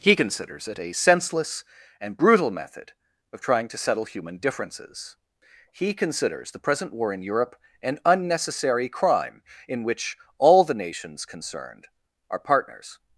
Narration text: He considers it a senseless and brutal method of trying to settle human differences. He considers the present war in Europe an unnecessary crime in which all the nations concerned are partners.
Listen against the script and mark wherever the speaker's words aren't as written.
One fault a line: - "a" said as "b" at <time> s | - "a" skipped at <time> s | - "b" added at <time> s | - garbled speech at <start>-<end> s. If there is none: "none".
none